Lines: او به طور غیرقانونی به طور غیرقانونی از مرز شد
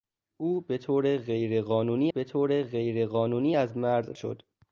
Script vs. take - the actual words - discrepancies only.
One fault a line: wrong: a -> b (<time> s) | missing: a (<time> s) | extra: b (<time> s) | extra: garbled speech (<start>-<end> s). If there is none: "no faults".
no faults